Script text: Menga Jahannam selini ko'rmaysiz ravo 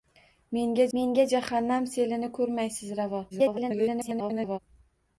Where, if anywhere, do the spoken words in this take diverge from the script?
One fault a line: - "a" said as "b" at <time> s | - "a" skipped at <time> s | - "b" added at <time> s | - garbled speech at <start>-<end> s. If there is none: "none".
- "menga" added at 1.0 s
- garbled speech at 3.3-4.6 s